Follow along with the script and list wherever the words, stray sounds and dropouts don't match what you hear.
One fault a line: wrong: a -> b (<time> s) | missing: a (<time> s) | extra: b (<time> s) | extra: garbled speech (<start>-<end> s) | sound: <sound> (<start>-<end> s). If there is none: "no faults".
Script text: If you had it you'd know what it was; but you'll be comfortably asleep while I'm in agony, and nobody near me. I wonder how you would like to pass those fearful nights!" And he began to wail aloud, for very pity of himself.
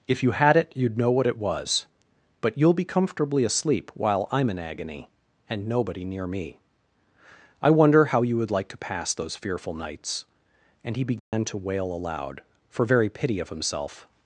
sound: dropout (11.2-11.3 s)